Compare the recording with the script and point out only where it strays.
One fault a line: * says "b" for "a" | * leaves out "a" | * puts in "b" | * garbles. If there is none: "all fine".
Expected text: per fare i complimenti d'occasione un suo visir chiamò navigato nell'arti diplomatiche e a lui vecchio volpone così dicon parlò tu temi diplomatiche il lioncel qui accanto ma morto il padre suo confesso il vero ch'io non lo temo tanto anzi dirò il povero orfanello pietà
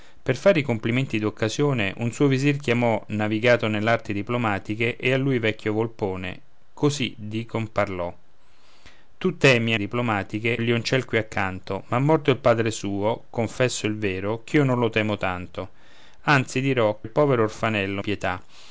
all fine